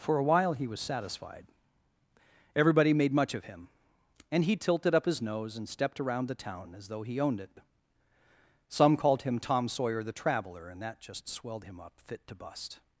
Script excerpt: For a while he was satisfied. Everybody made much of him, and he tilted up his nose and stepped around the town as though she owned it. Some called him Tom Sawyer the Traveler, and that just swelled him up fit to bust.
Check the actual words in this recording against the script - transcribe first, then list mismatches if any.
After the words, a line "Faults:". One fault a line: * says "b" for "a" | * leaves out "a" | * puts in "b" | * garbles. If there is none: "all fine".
For a while he was satisfied. Everybody made much of him, and he tilted up his nose and stepped around the town as though he owned it. Some called him Tom Sawyer the Traveler, and that just swelled him up fit to bust.
Faults:
* says "he" for "she"